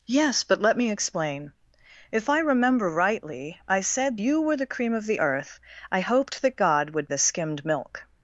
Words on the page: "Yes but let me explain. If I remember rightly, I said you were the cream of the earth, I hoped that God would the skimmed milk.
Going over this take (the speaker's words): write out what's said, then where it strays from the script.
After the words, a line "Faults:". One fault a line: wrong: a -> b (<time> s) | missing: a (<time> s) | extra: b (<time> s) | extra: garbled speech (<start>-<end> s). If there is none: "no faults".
"Yes but let me explain. If I remember rightly, I said you were the cream of the earth, I hoped that God would the skimmed milk.
Faults:
no faults